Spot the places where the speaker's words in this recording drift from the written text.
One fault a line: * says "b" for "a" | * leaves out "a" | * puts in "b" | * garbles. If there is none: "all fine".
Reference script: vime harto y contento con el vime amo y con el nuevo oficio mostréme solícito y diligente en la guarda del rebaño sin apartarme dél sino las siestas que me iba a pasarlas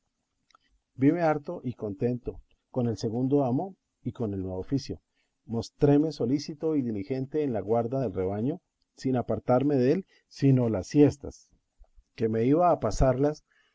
* says "segundo" for "vime"